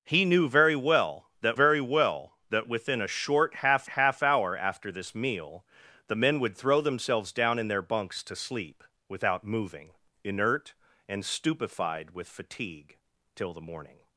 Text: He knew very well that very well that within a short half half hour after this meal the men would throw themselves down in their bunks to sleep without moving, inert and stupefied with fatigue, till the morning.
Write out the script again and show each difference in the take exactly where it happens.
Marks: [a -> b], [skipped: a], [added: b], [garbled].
He knew very well that very well that within a short half half hour after this meal the men would throw themselves down in their bunks to sleep without moving, inert and stupefied with fatigue, till the morning.